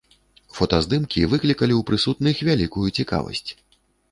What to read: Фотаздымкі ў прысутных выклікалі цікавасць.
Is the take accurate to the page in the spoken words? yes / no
no